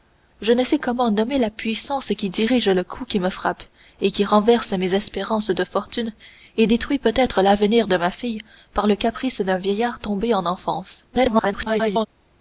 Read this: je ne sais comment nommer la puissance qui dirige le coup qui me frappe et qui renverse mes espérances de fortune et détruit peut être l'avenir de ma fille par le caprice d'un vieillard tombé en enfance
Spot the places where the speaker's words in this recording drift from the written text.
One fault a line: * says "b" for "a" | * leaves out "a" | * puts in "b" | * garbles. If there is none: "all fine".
* garbles